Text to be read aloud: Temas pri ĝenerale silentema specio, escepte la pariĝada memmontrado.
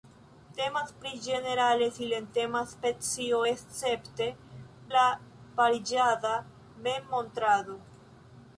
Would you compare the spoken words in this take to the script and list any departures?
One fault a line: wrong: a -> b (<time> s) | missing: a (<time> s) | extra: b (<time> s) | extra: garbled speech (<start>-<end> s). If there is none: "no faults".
no faults